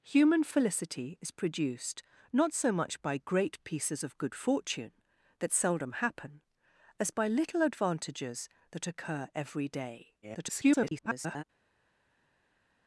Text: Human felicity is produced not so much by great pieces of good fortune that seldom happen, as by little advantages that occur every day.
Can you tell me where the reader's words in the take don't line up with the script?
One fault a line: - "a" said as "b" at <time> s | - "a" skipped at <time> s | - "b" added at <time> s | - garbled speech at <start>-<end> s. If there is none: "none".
- garbled speech at 10.2-11.4 s